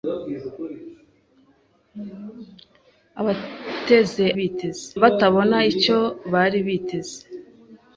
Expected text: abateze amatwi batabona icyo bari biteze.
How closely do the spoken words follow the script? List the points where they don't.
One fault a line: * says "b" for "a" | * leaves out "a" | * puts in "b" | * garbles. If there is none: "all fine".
* says "biteze" for "amatwi"